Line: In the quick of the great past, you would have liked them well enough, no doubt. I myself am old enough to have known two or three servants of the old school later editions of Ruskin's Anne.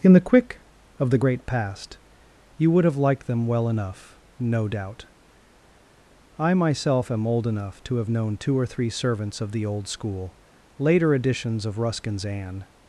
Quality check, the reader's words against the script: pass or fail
pass